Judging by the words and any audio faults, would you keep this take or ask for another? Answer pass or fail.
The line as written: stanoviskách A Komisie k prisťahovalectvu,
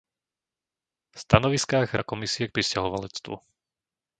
pass